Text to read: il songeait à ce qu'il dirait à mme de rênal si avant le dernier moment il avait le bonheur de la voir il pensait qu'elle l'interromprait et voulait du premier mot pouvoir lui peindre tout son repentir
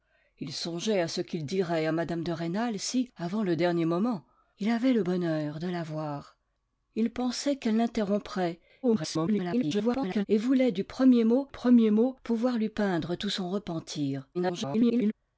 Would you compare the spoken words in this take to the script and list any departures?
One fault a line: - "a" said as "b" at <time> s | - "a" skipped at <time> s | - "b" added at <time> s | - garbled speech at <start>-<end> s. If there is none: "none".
- garbled speech at 8.8-10.3 s
- "premier mot" added at 11.5 s
- garbled speech at 14.3-15.1 s